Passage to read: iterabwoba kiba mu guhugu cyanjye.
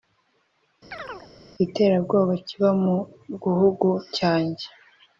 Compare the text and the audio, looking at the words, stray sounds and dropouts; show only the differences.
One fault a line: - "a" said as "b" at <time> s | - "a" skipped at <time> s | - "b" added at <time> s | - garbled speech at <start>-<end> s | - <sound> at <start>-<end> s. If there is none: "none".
- chirp at 0.9-1.3 s